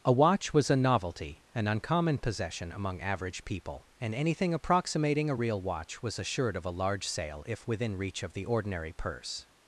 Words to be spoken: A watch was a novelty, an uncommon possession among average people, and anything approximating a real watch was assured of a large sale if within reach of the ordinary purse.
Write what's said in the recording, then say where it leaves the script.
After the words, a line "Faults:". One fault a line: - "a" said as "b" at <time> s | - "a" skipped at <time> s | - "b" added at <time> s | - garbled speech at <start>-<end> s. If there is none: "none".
A watch was a novelty, an uncommon possession among average people, and anything approximating a real watch was assured of a large sale if within reach of the ordinary purse.
Faults:
none